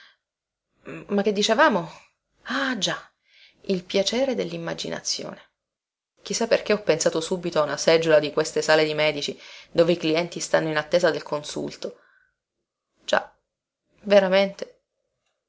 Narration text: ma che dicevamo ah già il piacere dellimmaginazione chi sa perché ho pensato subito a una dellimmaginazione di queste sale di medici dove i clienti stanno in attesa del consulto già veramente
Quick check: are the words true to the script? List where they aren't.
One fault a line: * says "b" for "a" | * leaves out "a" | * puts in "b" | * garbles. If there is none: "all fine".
* says "seggiola" for "dellimmaginazione"